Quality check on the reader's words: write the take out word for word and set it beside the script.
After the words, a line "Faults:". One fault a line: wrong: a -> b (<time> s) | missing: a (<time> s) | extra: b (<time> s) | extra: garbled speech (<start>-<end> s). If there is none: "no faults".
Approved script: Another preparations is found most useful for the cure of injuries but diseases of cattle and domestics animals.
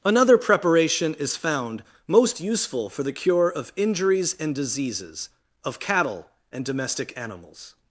Another preparation is found most useful for the cure of injuries and diseases of cattle and domestic animals.
Faults:
wrong: preparations -> preparation (0.4 s)
wrong: but -> and (4.4 s)
wrong: domestics -> domestic (6.7 s)